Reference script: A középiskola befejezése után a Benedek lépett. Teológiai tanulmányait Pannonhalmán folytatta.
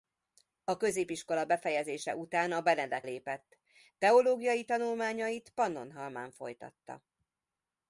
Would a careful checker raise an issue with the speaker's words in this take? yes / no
no